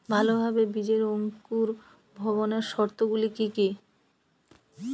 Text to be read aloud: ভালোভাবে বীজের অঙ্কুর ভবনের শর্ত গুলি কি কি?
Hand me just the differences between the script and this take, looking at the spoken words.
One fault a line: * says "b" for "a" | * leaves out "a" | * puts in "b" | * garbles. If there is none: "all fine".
all fine